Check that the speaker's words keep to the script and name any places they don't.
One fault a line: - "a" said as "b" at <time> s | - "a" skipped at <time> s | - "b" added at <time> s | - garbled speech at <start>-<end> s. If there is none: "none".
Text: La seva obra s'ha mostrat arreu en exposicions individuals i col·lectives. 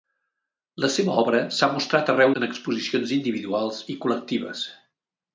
none